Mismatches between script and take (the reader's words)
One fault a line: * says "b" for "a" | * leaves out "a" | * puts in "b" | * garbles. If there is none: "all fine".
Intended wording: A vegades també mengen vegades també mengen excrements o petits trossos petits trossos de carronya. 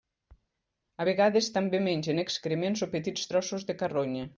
* leaves out "vegades també mengen"
* leaves out "petits trossos"